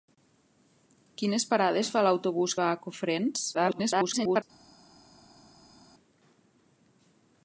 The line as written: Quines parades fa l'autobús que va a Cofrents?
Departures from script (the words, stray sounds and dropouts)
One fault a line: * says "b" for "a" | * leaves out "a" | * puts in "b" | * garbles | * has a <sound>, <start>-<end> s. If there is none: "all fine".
* leaves out "que"
* garbles